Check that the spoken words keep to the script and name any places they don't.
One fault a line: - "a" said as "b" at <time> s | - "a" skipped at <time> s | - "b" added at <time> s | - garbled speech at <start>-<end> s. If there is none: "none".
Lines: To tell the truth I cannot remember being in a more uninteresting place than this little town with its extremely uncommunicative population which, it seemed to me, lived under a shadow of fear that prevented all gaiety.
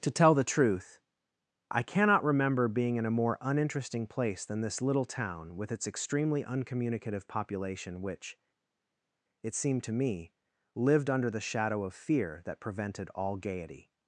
- "a" said as "the" at 11.3 s